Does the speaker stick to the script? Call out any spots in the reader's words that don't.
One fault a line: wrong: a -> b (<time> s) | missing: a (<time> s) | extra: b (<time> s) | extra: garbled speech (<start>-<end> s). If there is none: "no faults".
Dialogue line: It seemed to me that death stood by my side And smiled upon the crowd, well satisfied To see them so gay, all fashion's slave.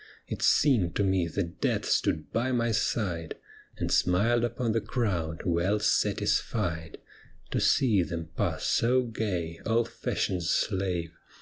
extra: pass (8.4 s)